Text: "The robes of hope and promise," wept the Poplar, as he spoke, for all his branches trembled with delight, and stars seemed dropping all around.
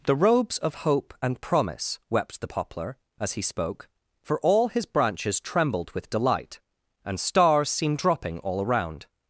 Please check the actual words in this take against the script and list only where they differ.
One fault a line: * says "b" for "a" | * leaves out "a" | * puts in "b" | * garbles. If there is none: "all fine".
all fine